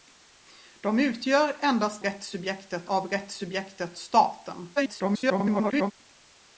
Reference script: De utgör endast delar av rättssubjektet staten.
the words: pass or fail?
fail